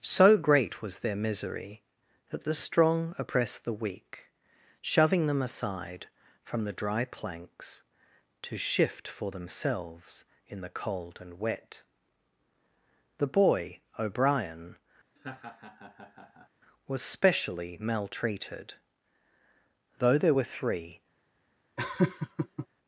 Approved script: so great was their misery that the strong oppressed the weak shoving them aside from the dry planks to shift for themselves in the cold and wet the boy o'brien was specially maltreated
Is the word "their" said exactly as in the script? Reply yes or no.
yes